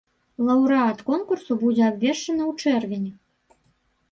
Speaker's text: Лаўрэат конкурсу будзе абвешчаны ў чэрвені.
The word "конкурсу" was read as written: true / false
true